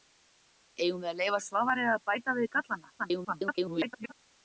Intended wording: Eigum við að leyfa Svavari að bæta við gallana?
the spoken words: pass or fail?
fail